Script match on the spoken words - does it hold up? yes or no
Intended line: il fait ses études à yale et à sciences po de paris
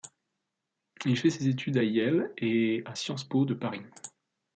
yes